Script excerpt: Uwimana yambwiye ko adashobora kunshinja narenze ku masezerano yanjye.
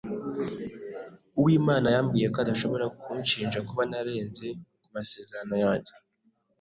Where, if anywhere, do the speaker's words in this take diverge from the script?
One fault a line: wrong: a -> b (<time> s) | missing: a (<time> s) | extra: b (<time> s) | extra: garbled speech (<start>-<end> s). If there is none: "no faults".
extra: kuba (3.7 s)